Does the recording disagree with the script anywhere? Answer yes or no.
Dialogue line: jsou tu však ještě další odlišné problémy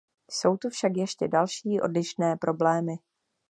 no